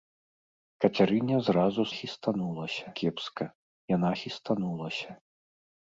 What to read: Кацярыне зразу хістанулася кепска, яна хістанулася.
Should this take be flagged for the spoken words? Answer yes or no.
no